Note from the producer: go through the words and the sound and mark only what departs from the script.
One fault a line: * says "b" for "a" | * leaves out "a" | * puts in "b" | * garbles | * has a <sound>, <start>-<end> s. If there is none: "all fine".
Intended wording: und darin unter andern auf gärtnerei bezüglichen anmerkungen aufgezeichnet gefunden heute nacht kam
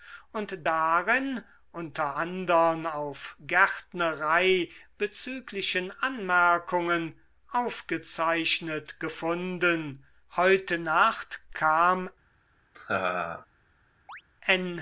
* has a laugh, 12.7-13.5 s
* has a chirp, 14.1-14.2 s